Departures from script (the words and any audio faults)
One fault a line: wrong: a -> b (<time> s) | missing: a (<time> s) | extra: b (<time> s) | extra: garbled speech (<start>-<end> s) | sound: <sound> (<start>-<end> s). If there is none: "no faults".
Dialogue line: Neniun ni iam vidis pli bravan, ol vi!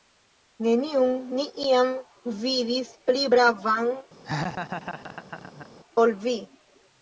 sound: laugh (4.2-5.7 s)